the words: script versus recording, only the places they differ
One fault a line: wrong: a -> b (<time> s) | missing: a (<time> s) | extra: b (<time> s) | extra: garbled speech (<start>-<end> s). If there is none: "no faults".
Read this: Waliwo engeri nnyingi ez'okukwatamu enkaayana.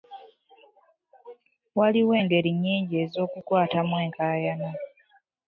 no faults